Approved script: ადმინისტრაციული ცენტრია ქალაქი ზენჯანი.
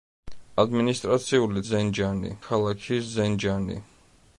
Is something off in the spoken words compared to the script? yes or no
yes